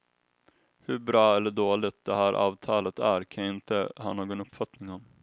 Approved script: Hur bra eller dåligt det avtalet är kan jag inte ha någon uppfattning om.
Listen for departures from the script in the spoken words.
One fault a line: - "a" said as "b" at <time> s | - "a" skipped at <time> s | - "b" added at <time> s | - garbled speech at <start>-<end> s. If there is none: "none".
- "här" added at 2.1 s